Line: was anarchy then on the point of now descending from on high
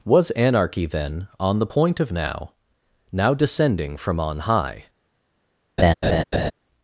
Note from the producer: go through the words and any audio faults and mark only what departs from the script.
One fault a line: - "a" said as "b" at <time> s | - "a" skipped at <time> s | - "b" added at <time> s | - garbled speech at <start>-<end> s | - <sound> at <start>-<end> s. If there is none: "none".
- "now" added at 3.1 s
- laugh at 5.8-6.5 s